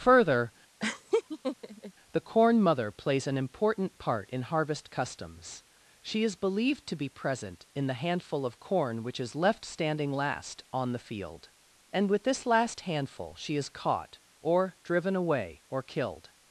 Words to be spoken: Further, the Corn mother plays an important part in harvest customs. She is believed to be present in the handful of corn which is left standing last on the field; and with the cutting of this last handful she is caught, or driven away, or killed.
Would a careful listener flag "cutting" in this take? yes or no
yes